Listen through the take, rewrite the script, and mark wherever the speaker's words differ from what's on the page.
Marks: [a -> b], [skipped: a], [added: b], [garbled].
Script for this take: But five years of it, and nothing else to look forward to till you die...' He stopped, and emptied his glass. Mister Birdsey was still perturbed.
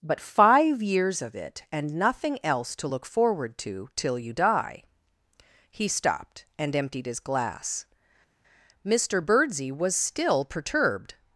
But five years of it, and nothing else to look forward to till you die...' He stopped, and emptied his glass. Mister Birdsey was still perturbed.